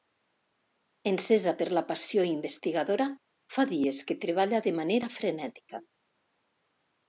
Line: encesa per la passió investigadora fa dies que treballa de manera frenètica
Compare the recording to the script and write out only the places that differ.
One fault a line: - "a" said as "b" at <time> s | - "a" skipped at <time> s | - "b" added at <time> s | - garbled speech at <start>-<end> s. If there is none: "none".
none